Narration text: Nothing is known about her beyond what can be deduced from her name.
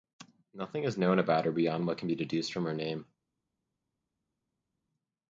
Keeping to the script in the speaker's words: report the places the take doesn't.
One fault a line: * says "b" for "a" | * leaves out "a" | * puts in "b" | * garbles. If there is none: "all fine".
all fine